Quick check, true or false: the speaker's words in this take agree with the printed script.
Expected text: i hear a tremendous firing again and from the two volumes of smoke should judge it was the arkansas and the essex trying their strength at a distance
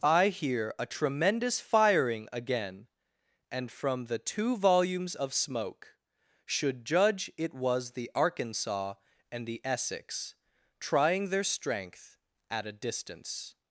true